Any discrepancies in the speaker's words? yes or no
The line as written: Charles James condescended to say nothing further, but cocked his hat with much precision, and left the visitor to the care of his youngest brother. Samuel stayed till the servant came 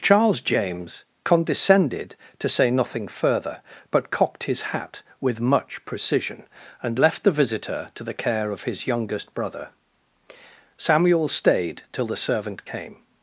no